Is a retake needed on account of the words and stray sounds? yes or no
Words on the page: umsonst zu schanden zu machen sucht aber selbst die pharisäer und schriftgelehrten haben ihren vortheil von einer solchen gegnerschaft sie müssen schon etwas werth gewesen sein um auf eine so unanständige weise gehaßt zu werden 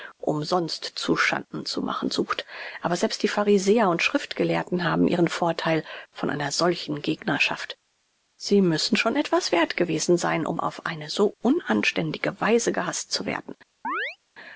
yes